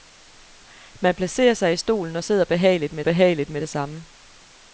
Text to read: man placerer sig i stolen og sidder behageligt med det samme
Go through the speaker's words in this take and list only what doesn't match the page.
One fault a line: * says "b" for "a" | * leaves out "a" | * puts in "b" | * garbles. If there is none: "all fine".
* puts in "behageligt med"